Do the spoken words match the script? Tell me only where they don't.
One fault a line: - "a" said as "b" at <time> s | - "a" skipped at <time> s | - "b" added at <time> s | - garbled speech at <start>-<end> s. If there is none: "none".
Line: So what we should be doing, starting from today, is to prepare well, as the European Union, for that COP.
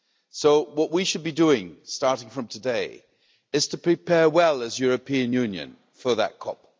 none